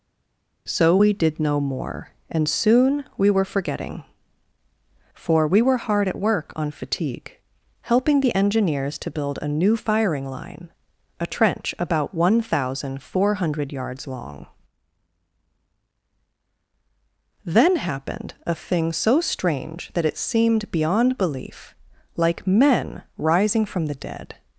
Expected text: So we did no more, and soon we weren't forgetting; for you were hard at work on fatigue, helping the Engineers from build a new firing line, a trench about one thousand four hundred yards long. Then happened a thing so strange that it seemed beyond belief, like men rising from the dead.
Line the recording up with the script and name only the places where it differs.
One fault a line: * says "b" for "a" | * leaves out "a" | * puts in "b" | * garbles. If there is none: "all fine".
* says "were" for "weren't"
* says "we" for "you"
* says "to" for "from"